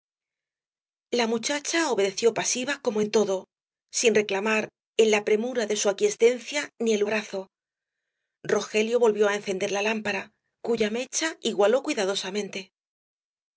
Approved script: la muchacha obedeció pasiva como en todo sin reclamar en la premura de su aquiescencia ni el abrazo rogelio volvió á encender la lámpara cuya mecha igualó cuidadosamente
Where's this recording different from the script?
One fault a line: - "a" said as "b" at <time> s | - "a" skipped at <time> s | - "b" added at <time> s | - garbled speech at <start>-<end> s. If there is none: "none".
none